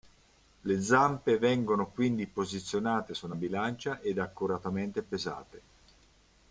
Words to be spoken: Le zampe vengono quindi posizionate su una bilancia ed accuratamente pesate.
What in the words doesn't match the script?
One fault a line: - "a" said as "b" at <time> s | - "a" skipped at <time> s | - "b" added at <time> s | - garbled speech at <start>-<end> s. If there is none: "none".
none